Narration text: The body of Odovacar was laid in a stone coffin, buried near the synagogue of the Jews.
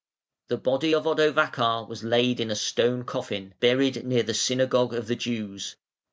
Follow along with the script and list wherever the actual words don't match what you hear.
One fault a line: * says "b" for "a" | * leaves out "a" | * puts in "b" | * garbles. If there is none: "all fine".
all fine